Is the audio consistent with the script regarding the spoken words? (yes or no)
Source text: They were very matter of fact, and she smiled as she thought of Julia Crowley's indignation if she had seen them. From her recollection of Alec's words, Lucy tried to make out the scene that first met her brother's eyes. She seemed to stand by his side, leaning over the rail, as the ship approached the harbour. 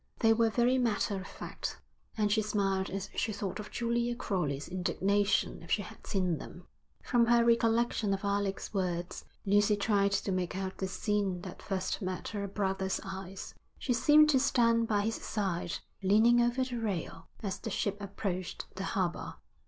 yes